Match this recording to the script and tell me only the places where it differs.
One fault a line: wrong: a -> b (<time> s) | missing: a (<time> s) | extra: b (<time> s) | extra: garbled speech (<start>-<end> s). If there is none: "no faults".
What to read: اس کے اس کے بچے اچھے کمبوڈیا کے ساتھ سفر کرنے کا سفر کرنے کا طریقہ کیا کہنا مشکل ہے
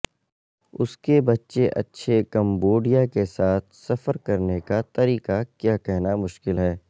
missing: اس کے (1.2 s)
missing: سفر کرنے کا (4.8 s)